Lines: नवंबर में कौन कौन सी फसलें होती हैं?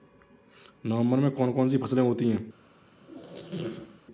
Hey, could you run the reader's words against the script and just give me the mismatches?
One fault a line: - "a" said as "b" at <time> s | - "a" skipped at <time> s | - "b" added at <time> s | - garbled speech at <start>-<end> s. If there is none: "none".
none